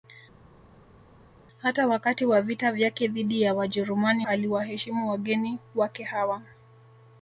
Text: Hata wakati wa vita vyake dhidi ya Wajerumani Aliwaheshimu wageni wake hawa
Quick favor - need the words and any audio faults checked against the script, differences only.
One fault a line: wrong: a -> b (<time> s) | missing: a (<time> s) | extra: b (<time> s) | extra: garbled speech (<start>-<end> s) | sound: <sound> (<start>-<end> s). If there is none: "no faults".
no faults